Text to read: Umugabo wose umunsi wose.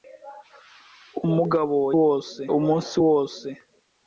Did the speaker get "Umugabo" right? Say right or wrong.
right